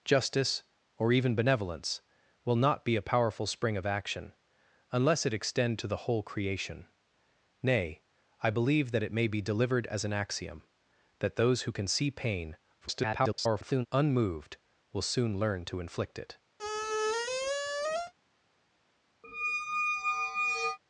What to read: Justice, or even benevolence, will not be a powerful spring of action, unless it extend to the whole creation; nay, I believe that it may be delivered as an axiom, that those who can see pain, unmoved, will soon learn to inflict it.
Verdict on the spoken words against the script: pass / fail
fail